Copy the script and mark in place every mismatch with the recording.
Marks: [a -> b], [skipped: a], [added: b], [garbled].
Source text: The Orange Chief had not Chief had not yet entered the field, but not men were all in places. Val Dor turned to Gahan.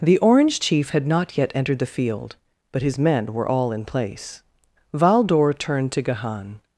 The Orange Chief had not [skipped: Chief had not] yet entered the field, but [not -> his] men were all in [places. -> place] Val Dor turned to Gahan.